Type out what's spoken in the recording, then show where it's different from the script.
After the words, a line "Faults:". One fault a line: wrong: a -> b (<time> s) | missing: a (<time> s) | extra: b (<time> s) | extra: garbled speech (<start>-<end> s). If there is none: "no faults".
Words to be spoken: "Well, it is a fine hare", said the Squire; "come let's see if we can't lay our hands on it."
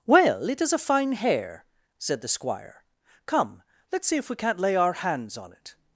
"Well, it is a fine hare", said the Squire; "come let's see if we can't lay our hands on it."
Faults:
no faults